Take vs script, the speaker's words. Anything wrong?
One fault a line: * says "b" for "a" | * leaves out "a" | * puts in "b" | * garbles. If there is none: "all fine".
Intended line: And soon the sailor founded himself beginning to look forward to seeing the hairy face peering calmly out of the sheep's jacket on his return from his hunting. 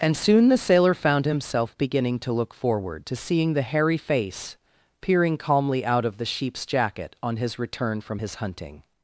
* says "found" for "founded"